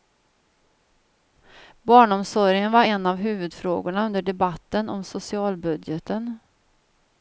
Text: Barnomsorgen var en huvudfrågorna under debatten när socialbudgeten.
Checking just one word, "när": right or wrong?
wrong